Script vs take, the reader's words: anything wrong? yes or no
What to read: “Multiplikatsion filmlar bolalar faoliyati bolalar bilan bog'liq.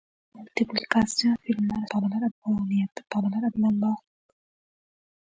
no